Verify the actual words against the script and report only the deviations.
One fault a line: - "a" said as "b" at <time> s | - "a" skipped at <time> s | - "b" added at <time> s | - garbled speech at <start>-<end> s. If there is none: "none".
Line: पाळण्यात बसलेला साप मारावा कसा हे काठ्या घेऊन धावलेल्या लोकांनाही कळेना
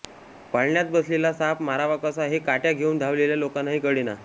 none